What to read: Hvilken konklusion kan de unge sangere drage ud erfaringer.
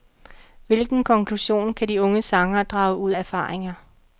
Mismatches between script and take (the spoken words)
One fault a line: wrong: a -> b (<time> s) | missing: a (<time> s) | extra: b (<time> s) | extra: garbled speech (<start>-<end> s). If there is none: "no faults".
no faults